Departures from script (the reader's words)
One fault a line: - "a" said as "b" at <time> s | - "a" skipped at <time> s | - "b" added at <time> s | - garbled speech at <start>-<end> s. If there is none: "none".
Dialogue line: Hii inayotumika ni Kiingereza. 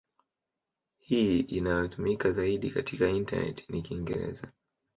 - "zaidi katika intaneti" added at 2.3 s